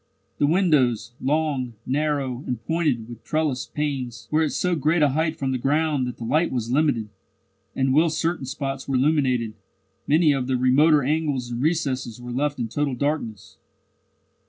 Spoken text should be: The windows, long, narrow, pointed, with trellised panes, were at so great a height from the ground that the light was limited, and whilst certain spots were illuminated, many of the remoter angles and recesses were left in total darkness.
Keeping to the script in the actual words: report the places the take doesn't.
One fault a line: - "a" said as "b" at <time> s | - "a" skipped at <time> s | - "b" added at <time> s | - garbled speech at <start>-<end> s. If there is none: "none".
- "and" added at 2.5 s